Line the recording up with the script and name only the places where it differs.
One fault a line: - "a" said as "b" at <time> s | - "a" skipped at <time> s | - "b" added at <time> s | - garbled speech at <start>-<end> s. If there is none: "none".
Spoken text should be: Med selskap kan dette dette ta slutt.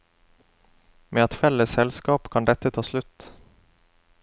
- "et felles" added at 1.2 s
- "dette" skipped at 2.7 s